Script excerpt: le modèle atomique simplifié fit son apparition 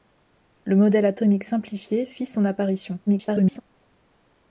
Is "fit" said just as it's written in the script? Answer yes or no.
yes